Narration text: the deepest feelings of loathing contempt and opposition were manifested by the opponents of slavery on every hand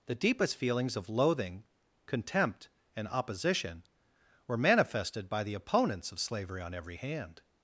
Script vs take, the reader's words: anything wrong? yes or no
no